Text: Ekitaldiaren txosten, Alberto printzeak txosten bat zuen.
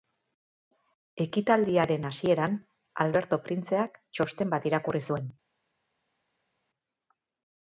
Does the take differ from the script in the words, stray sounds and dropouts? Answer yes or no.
yes